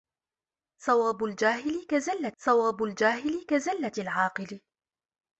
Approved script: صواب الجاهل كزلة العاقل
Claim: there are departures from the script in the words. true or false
true